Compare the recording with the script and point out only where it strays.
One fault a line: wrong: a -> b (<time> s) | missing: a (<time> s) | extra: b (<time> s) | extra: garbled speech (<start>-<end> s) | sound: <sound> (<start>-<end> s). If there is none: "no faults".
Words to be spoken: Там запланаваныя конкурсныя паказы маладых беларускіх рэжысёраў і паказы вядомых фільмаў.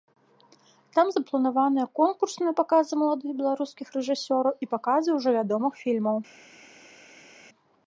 extra: ўжо (5.2 s)